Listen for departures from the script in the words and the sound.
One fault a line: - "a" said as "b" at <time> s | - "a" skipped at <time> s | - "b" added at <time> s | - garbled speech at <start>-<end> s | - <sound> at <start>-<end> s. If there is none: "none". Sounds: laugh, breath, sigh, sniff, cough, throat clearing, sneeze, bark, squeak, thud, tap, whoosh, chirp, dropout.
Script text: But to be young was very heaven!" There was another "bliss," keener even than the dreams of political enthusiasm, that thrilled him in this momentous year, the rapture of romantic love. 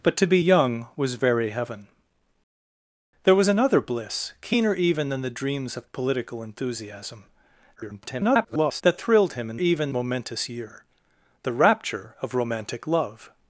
- garbled speech at 7.8-8.8 s
- "this" said as "even" at 9.6 s